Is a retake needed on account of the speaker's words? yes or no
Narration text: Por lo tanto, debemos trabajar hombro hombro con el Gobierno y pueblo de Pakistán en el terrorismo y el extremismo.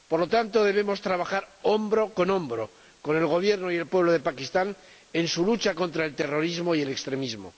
yes